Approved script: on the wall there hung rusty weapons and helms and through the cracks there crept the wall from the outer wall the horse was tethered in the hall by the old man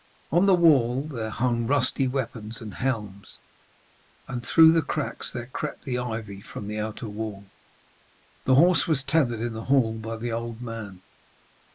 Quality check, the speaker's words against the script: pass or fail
fail